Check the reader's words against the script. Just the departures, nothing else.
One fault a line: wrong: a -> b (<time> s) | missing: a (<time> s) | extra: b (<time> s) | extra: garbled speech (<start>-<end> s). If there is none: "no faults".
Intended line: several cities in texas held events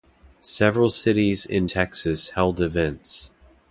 no faults